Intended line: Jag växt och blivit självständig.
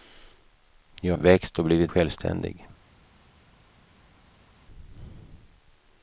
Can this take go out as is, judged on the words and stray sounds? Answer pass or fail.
pass